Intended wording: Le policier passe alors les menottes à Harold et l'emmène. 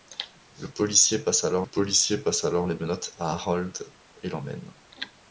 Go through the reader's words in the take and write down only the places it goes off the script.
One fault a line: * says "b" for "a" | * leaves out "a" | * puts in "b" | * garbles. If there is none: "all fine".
* puts in "policier passe alors"